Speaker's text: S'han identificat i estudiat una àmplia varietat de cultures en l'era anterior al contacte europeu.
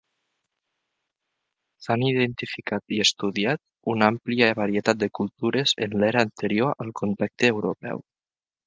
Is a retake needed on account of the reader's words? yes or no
no